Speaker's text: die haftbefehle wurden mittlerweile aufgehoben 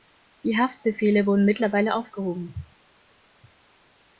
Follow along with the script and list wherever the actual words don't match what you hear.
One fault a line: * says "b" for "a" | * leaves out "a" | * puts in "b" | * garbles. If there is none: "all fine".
all fine